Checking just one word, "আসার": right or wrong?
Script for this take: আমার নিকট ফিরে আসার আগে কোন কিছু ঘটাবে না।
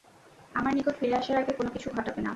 right